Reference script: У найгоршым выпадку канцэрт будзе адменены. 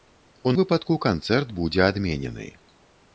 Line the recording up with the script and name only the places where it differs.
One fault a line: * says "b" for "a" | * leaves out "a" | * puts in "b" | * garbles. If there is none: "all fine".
* leaves out "найгоршым"